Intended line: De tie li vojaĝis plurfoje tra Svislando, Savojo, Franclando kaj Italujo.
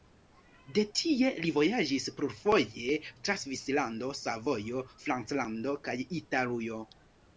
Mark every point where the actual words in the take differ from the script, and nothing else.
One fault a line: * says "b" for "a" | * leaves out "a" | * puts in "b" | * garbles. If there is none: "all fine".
all fine